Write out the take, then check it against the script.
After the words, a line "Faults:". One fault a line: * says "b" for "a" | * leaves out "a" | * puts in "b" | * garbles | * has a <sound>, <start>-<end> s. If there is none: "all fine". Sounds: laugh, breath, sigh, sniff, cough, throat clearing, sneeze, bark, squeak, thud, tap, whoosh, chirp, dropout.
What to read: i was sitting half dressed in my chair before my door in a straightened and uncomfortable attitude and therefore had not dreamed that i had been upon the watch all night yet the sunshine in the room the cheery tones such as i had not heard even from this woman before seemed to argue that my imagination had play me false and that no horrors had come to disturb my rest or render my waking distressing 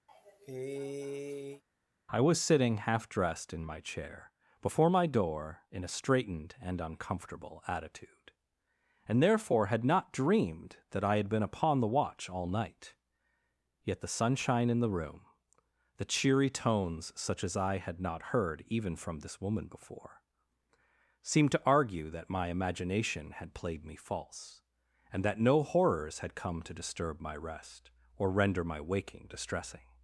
i was sitting half dressed in my chair before my door in a straightened and uncomfortable attitude and therefore had not dreamed that i had been upon the watch all night yet the sunshine in the room the cheery tones such as i had not heard even from this woman before seemed to argue that my imagination had played me false and that no horrors had come to disturb my rest or render my waking distressing
Faults:
* has a cough, 0.1-1.6 s
* says "played" for "play"